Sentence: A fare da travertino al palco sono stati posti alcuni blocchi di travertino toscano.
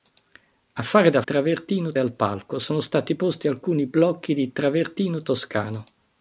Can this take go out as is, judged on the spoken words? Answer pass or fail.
pass